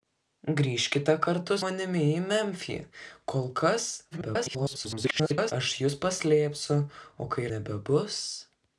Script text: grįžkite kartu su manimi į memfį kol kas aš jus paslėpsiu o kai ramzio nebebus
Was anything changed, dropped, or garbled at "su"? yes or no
yes